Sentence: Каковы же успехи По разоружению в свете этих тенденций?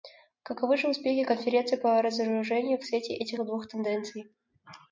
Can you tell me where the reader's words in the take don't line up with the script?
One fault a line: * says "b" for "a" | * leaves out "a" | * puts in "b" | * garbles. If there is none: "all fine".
* puts in "Конференции"
* puts in "двух"